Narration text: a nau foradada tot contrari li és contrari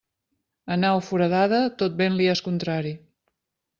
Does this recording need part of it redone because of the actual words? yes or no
yes